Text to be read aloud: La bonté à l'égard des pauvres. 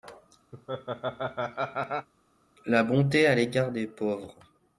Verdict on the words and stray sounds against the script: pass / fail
fail